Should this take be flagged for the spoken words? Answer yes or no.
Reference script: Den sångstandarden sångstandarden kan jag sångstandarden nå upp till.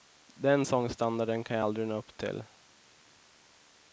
yes